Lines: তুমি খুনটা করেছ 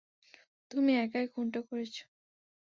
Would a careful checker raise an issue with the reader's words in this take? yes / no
yes